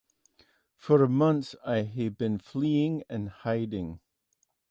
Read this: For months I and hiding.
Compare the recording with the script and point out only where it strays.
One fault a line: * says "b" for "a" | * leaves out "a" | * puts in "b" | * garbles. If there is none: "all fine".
* puts in "have been fleeing"